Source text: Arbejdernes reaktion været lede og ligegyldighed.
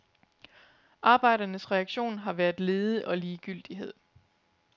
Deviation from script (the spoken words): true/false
true